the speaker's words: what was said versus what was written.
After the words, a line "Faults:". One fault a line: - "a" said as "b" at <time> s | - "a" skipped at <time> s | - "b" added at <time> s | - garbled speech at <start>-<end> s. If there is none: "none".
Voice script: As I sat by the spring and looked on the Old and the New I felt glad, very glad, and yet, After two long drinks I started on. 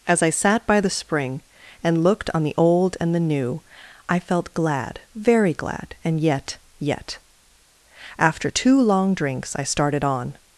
As I sat by the spring and looked on the Old and the New I felt glad, very glad, and yet yet, After two long drinks I started on.
Faults:
- "yet" added at 6.8 s